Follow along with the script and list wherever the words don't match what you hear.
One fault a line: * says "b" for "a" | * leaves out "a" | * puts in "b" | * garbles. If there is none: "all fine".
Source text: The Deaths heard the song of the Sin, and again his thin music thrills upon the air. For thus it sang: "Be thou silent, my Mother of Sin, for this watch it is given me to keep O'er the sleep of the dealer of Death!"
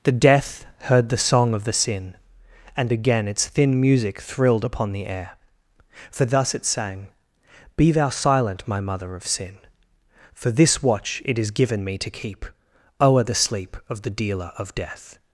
* says "Death" for "Deaths"
* says "its" for "his"
* says "thrilled" for "thrills"